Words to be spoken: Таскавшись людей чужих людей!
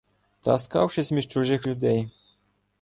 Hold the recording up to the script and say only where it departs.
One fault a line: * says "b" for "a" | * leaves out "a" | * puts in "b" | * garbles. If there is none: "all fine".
* says "між" for "людей"